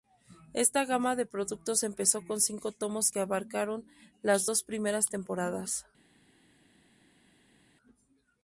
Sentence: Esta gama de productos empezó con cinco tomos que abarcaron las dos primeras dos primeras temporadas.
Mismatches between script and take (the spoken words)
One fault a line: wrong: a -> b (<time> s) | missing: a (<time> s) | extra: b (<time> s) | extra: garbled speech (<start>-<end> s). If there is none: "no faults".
missing: dos primeras (5.1 s)